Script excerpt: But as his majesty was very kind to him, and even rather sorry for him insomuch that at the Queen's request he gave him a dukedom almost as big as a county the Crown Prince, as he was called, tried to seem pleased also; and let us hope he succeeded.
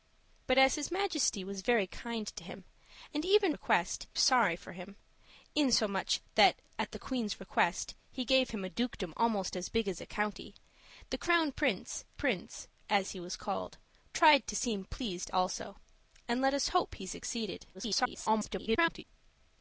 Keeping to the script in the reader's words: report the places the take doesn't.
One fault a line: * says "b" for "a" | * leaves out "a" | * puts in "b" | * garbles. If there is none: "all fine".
* says "request" for "rather"
* puts in "Prince"
* garbles